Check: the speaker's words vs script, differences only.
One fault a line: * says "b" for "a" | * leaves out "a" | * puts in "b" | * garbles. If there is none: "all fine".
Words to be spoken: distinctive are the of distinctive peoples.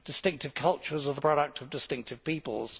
* puts in "cultures"
* puts in "product"